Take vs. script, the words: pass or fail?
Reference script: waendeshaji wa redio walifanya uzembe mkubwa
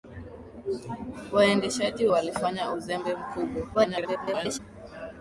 fail